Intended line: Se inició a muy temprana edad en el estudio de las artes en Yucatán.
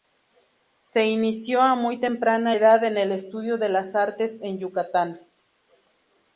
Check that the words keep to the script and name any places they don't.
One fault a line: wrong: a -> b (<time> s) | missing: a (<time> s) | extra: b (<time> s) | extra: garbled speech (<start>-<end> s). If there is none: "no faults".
no faults